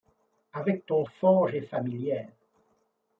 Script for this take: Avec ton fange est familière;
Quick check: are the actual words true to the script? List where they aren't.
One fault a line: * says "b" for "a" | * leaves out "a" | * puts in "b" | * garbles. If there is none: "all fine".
all fine